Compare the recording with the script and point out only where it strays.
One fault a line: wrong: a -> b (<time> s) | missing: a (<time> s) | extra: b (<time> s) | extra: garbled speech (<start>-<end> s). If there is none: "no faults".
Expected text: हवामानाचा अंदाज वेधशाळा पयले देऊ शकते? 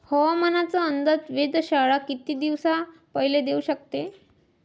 extra: किती दिवसा (2.1 s)